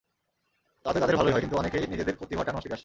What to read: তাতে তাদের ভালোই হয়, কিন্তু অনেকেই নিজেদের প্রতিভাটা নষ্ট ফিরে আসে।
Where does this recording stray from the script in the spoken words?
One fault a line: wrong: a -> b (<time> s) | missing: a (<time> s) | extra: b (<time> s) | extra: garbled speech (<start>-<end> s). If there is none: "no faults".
no faults